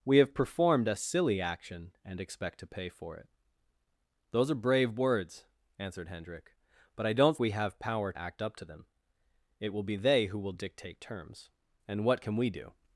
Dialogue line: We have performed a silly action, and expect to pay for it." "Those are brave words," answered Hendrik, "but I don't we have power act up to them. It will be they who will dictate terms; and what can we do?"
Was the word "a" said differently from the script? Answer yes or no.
no